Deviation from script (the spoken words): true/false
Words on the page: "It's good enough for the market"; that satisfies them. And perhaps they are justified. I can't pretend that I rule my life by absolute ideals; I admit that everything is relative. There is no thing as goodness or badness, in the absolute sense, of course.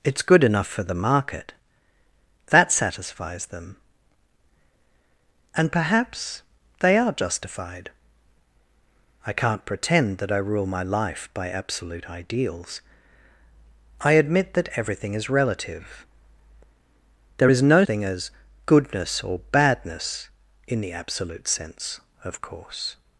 false